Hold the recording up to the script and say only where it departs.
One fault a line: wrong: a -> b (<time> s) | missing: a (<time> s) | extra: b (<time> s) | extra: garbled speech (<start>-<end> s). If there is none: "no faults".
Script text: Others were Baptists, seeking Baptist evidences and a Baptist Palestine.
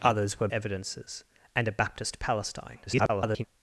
missing: Baptists seeking Baptist (0.5 s)
extra: garbled speech (2.9-3.4 s)